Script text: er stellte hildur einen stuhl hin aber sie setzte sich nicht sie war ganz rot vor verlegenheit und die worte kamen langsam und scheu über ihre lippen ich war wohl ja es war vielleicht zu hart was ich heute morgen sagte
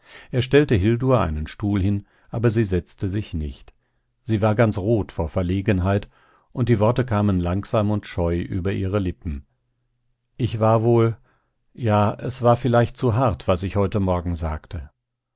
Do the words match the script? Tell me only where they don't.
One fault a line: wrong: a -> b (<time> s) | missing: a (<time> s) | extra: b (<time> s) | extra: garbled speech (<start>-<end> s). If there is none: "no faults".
no faults